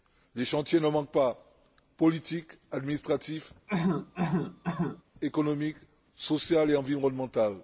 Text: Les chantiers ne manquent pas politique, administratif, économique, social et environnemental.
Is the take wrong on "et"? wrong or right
right